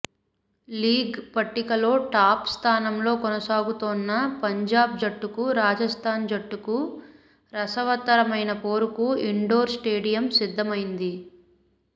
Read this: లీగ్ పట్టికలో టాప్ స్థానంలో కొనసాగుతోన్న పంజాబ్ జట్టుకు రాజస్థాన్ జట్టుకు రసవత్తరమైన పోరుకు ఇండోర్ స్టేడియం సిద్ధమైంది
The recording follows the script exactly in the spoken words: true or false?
true